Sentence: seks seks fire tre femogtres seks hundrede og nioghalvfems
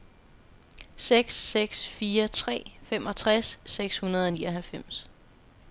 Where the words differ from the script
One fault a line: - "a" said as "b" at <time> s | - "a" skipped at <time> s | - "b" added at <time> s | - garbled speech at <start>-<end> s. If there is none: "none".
none